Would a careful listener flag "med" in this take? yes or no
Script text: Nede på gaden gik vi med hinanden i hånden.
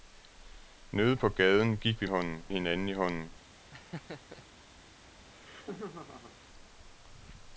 yes